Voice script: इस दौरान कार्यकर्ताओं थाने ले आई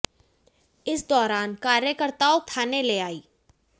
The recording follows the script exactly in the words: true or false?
true